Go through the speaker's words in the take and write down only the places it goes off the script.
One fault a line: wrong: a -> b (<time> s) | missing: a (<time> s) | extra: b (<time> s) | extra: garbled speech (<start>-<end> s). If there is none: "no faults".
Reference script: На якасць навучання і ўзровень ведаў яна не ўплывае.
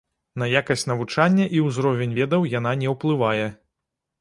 no faults